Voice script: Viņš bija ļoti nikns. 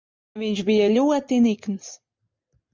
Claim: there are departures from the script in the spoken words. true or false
false